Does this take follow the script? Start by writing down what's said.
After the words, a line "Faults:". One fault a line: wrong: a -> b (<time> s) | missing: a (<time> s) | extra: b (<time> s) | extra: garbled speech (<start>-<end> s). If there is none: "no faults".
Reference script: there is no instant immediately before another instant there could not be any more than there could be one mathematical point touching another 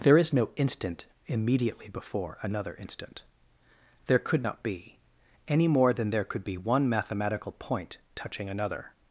there is no instant immediately before another instant there could not be any more than there could be one mathematical point touching another
Faults:
no faults